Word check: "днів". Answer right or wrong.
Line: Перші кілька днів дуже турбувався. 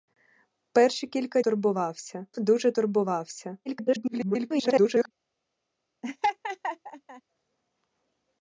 wrong